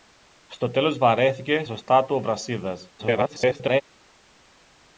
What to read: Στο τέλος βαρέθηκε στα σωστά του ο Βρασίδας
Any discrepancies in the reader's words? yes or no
yes